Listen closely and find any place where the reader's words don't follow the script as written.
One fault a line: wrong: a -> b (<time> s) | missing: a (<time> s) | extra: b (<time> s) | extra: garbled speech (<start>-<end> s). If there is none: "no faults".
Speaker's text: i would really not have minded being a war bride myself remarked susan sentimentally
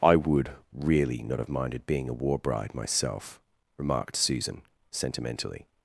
no faults